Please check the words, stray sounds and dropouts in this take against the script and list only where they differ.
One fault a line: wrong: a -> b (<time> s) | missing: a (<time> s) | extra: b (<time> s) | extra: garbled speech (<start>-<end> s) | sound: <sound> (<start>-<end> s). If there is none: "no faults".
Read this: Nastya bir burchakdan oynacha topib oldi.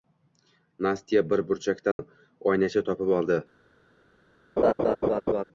sound: dropout (1.9-2.0 s)
sound: laugh (4.6-5.4 s)